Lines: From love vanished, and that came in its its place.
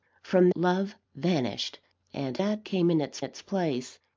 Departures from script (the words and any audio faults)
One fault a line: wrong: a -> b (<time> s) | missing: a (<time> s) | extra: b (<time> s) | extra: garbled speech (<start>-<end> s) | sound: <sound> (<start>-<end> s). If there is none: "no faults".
no faults